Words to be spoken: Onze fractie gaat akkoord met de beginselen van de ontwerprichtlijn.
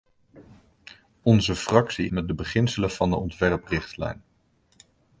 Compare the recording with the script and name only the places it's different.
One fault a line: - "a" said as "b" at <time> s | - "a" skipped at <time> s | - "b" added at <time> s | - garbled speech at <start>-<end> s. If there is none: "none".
- "gaat akkoord" skipped at 2.1 s